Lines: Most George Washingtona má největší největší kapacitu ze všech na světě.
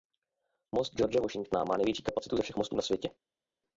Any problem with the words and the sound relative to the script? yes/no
yes